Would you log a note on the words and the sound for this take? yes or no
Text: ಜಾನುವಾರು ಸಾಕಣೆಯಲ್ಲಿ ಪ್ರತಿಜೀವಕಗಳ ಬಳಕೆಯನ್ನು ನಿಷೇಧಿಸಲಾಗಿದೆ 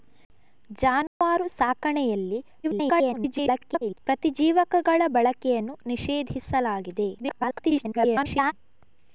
yes